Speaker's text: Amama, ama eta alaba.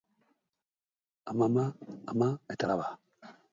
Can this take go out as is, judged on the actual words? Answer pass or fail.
pass